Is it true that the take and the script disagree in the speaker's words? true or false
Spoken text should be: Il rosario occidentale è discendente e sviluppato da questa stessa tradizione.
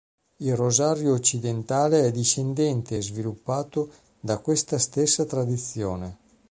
false